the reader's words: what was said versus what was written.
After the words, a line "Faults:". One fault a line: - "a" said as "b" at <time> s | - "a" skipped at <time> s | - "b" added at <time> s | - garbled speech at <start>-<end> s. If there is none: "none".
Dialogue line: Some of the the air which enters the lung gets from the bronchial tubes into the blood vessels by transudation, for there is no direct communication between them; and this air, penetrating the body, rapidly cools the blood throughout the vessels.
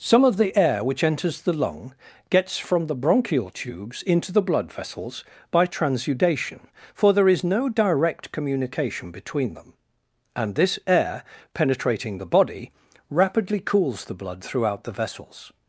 Some of the air which enters the lung gets from the bronchial tubes into the blood vessels by transudation, for there is no direct communication between them; and this air, penetrating the body, rapidly cools the blood throughout the vessels.
Faults:
- "the" skipped at 0.6 s